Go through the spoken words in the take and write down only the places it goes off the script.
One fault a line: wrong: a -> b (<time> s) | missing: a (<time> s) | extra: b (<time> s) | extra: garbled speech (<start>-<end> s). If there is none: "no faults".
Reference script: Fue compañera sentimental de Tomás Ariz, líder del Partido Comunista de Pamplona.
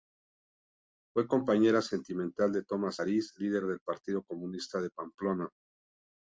no faults